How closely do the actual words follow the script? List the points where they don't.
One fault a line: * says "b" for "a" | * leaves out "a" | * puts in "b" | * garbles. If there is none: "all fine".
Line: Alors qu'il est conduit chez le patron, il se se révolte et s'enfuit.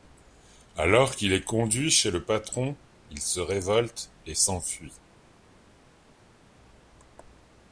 * leaves out "se"